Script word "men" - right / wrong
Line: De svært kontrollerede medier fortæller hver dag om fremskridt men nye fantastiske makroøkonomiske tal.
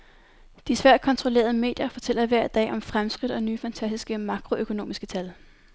wrong